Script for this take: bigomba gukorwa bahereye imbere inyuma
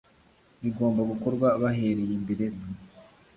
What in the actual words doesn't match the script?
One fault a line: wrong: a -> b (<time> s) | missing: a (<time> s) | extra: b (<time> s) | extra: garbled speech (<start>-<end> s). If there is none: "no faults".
no faults